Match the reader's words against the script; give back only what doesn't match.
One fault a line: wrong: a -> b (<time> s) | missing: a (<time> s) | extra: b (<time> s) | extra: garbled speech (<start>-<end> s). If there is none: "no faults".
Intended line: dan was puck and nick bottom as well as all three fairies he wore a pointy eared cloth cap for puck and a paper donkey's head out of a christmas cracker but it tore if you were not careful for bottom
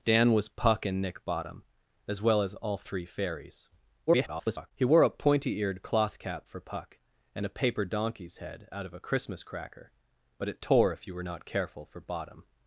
extra: garbled speech (4.1-4.7 s)